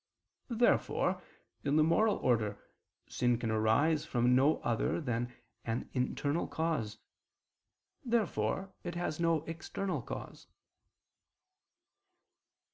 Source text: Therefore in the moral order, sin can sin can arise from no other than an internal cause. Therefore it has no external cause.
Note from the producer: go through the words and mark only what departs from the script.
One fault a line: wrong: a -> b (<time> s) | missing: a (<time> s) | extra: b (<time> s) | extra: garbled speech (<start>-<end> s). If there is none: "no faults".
missing: sin can (3.5 s)